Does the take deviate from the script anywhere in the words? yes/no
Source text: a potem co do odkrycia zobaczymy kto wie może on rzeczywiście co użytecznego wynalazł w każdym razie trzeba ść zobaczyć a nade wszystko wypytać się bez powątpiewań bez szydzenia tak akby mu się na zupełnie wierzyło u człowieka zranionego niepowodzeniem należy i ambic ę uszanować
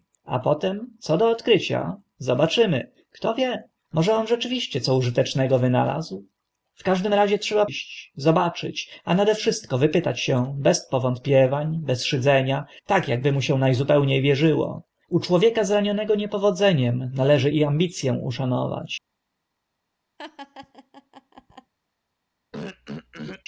no